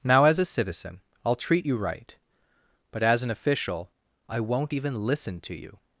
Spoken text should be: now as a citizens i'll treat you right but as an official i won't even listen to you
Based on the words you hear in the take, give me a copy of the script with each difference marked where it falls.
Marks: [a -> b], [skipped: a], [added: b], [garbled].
now as a [citizens -> citizen] i'll treat you right but as an official i won't even listen to you